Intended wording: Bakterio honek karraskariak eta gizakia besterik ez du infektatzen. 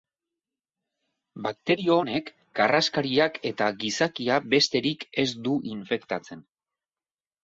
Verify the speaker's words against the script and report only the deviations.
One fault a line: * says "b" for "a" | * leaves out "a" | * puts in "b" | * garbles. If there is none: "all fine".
all fine